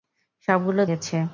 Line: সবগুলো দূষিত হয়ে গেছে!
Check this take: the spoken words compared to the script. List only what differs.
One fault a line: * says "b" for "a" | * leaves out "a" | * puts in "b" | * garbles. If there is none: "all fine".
* leaves out "দূষিত হয়ে"